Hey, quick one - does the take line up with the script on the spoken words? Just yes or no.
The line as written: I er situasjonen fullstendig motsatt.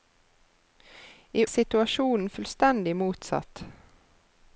yes